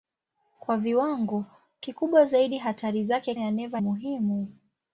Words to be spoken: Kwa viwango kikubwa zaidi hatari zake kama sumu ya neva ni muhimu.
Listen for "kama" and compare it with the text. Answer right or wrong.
wrong